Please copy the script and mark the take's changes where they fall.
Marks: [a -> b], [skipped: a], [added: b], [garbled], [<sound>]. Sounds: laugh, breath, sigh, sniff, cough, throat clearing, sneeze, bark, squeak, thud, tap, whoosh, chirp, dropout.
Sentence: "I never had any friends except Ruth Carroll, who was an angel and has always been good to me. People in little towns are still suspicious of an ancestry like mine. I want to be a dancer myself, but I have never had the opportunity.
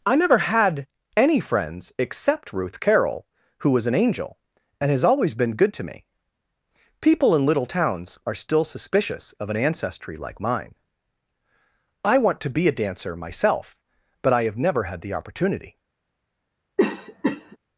"I never had any friends except Ruth Carroll, who was an angel and has always been good to me. People in little towns are still suspicious of an ancestry like mine. I want to be a dancer myself, but I have never had the opportunity. [cough]